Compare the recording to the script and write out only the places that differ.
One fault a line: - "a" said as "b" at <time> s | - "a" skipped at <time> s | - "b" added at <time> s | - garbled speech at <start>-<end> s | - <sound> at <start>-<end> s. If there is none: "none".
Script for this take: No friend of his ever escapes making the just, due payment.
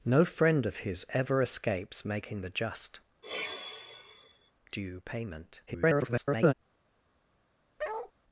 - sigh at 3.2-4.5 s
- garbled speech at 5.7-6.5 s
- bark at 7.8-8.1 s